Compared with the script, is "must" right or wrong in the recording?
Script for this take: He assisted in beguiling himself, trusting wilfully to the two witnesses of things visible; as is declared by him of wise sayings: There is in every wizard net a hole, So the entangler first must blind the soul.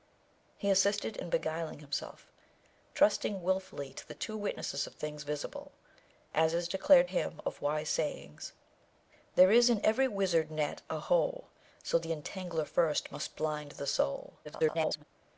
right